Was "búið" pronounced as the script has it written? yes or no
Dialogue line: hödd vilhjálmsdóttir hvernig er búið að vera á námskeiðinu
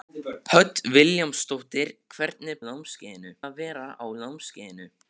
no